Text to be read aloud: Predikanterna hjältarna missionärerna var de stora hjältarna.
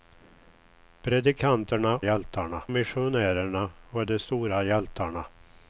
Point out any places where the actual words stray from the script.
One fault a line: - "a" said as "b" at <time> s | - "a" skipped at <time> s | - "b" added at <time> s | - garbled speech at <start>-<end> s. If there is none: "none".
none